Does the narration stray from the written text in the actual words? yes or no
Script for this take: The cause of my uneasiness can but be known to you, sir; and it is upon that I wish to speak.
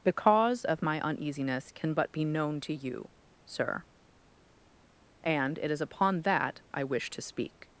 no